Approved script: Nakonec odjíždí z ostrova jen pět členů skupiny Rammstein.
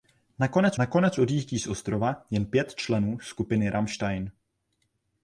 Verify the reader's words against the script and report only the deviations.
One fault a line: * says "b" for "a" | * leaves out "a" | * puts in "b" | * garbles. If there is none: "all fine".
* puts in "nakonec"